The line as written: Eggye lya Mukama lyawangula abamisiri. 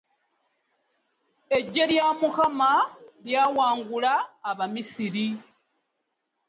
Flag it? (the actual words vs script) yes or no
no